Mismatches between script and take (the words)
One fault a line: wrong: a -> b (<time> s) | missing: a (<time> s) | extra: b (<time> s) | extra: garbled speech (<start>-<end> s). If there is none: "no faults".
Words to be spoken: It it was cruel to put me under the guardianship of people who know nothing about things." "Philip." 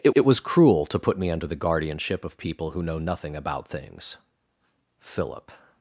no faults